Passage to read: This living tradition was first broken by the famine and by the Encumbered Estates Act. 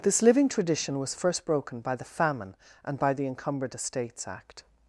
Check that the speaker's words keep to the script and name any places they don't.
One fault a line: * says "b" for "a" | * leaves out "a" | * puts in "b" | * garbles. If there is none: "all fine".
all fine